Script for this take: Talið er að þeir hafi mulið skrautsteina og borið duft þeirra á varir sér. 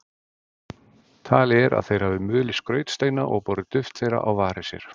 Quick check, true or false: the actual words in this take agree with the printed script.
true